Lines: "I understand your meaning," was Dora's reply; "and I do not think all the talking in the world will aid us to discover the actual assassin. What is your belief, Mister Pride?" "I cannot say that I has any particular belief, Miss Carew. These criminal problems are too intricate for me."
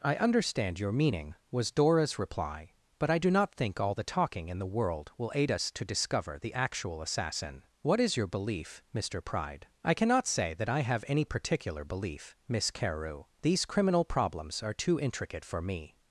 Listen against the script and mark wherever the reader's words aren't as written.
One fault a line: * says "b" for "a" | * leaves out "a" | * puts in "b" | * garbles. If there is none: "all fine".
* says "but" for "and"
* says "have" for "has"